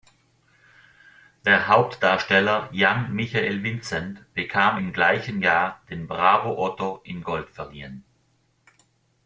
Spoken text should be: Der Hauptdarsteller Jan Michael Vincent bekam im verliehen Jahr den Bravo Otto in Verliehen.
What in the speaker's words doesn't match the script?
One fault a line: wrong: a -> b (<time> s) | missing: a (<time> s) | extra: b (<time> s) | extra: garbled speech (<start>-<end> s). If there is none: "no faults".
wrong: verliehen -> gleichen (4.9 s)
extra: Gold (7.2 s)